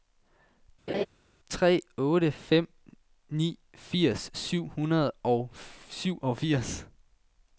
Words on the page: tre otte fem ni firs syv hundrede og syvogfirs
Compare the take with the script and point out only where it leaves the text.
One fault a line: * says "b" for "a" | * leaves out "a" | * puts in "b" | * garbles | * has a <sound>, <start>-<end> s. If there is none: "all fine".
* has a laugh, 0.9-1.1 s